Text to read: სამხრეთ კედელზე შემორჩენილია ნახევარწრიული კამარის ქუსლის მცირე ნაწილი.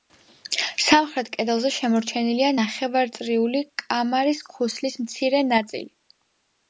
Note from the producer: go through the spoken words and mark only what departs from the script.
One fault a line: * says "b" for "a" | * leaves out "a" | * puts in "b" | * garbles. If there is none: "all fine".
all fine